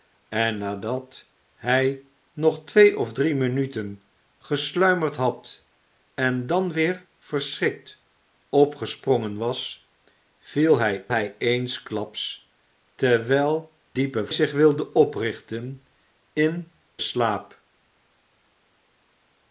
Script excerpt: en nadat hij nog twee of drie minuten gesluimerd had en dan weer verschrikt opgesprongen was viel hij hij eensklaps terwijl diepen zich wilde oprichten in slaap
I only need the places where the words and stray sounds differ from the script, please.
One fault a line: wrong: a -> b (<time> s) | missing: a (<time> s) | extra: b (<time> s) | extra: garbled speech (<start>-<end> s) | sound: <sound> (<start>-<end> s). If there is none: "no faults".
no faults